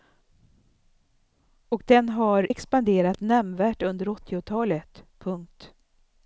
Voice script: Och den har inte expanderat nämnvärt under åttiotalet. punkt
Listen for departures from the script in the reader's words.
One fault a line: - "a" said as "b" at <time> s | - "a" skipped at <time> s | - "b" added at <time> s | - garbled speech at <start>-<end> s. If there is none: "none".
- "inte" skipped at 2.5 s